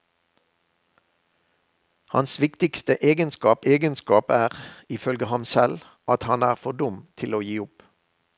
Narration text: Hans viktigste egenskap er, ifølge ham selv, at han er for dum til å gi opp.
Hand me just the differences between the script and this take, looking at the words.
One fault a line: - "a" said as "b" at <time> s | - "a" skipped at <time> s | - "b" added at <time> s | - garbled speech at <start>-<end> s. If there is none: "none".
- "egenskap" added at 3.6 s